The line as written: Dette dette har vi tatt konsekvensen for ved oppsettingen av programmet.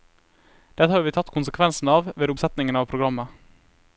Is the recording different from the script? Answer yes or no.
yes